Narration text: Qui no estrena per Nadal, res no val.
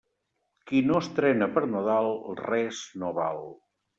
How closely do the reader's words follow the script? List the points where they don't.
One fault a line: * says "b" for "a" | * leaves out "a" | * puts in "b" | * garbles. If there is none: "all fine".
all fine